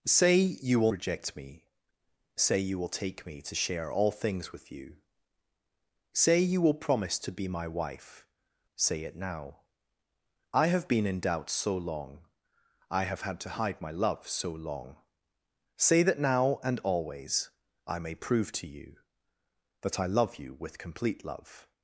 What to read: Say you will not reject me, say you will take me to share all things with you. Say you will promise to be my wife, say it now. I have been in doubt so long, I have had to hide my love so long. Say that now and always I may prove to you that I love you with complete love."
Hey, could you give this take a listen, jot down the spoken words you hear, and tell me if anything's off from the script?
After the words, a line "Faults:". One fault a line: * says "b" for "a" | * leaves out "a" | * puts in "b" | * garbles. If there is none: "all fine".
Say you will reject me, say you will take me to share all things with you. Say you will promise to be my wife, say it now. I have been in doubt so long, I have had to hide my love so long. Say that now and always I may prove to you that I love you with complete love."
Faults:
* leaves out "not"